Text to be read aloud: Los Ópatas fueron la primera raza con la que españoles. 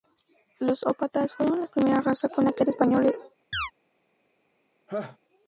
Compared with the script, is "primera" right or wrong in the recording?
right